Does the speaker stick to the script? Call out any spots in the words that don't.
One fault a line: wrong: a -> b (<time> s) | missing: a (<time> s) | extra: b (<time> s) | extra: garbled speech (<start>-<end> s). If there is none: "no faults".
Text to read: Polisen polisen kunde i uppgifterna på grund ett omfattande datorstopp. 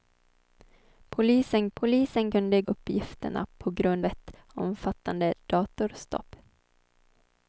no faults